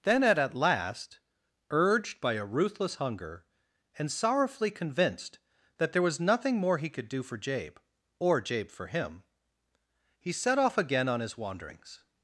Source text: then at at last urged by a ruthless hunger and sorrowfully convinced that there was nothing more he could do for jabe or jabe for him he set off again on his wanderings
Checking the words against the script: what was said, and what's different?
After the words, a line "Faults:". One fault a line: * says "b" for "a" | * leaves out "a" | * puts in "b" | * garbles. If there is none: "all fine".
then at at last urged by a ruthless hunger and sorrowfully convinced that there was nothing more he could do for jabe or jabe for him he set off again on his wanderings
Faults:
all fine